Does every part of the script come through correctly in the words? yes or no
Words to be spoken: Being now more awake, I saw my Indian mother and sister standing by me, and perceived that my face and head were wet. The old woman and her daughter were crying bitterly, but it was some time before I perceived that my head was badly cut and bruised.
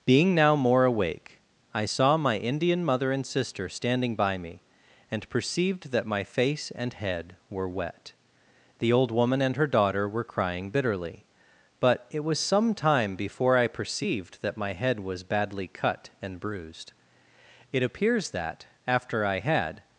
no